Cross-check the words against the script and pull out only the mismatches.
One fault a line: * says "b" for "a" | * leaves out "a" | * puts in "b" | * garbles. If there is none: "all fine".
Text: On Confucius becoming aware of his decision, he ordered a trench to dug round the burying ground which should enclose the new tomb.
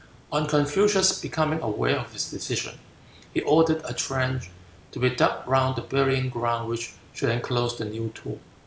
* puts in "be"